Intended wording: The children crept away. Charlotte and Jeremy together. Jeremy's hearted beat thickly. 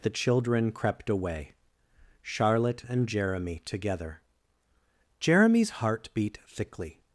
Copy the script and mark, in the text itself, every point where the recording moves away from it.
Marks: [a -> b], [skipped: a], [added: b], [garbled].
The children crept away. Charlotte and Jeremy together. Jeremy's [hearted -> heart] beat thickly.